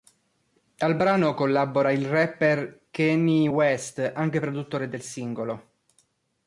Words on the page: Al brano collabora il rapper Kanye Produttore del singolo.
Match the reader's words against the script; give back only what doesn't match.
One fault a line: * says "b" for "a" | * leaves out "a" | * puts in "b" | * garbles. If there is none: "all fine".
* puts in "West anche"